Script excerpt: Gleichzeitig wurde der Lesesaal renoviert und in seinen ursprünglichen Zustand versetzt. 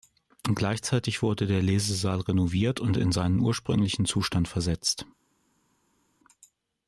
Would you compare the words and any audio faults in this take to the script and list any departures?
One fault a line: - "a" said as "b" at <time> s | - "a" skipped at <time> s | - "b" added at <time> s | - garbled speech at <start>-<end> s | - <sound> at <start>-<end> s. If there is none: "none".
none